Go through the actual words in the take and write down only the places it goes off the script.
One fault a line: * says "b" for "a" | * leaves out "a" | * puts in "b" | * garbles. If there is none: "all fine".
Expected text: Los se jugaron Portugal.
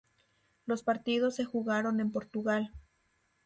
* puts in "partidos"
* puts in "en"